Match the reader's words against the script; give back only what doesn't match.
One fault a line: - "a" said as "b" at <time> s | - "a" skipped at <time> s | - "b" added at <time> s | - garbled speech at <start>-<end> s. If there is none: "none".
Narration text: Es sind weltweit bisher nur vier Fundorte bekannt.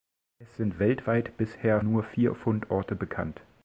none